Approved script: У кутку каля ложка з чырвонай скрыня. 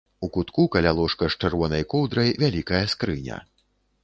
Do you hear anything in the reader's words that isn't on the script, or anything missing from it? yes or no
yes